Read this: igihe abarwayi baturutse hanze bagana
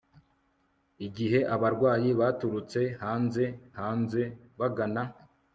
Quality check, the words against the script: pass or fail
fail